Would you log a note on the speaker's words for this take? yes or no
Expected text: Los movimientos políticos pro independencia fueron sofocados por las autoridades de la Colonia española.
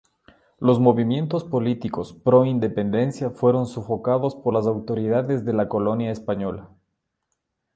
no